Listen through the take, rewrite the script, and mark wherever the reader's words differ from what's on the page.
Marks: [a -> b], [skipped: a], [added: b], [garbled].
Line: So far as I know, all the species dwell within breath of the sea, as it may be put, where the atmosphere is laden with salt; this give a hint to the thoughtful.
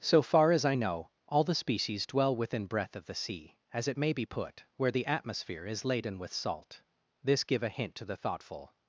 So far as I know, all the species dwell within breath of the sea, as it may be put, where the atmosphere is laden with salt; this give a hint to the thoughtful.